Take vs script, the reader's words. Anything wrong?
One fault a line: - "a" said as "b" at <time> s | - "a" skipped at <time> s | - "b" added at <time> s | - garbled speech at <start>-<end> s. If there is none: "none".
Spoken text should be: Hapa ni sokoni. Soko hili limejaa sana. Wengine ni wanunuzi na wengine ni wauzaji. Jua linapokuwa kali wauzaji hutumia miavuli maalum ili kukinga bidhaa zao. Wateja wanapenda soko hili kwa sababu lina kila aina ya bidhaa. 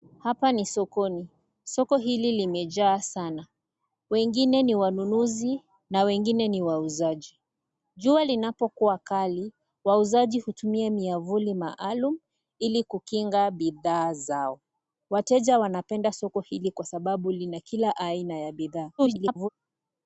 - garbled speech at 19.0-19.5 s